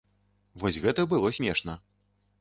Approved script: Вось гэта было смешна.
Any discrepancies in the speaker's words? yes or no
no